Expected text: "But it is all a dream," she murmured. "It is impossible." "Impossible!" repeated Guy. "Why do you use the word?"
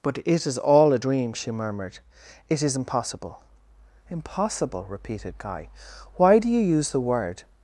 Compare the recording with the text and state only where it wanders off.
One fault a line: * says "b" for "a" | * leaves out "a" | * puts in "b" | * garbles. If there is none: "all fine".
all fine